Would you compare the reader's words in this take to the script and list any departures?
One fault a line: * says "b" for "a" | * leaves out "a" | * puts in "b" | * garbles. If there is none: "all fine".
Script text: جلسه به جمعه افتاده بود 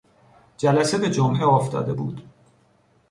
all fine